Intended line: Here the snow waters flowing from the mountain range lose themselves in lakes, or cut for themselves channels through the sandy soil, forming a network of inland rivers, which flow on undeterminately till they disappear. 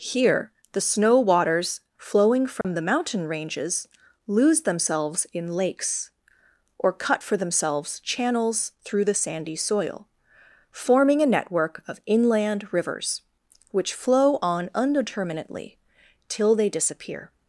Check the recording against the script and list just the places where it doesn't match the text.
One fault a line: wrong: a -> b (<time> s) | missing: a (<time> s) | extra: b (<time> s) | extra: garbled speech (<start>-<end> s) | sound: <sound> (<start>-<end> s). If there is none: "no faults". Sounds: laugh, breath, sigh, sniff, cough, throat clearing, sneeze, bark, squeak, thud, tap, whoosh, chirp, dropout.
sound: dropout (2.6-2.6 s)
wrong: range -> ranges (3.3 s)